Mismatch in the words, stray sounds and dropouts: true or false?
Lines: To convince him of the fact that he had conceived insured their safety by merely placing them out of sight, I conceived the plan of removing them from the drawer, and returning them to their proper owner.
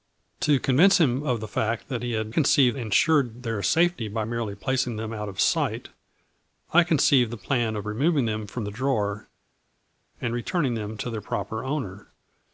false